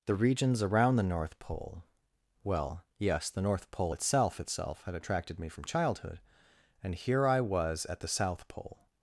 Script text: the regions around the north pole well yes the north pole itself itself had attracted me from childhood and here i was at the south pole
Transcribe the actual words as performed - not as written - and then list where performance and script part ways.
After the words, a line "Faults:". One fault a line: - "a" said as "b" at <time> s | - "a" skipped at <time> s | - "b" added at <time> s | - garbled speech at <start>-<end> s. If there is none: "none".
the regions around the north pole well yes the north pole itself itself had attracted me from childhood and here i was at the south pole
Faults:
none